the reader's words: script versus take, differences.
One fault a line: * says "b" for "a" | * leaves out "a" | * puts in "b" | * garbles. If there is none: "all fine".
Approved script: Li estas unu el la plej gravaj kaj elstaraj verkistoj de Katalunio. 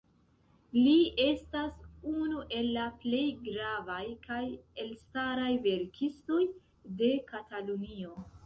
all fine